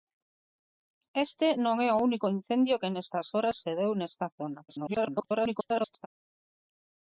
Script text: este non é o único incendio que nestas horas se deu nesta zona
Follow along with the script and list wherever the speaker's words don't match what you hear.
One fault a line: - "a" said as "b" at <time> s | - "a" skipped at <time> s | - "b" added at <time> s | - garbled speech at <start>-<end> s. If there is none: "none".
- garbled speech at 4.7-6.1 s